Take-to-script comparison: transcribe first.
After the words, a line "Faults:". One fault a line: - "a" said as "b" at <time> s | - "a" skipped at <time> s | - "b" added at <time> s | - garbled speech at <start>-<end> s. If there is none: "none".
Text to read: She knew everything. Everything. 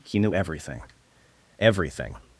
He knew everything. Everything.
Faults:
- "She" said as "He" at 0.0 s